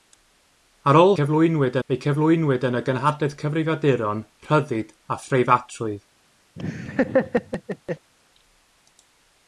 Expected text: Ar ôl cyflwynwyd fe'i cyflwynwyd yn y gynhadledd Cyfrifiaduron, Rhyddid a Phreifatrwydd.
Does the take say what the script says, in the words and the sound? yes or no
no